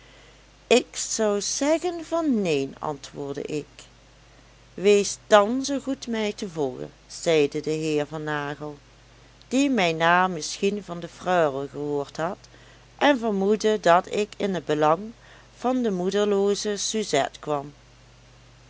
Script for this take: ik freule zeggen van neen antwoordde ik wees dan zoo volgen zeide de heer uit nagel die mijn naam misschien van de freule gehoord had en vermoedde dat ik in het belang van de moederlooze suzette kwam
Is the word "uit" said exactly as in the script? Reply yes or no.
no